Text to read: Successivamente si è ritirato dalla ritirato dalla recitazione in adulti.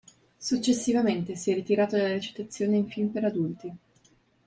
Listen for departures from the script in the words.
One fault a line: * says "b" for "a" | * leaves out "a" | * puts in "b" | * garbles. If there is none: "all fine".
* says "recitazione in film per" for "ritirato dalla recitazione in"